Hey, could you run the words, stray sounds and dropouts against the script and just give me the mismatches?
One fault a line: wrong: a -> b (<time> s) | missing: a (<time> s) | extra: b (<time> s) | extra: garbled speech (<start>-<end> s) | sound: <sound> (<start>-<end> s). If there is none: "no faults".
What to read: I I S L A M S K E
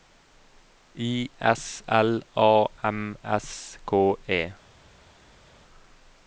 missing: I (1.3 s)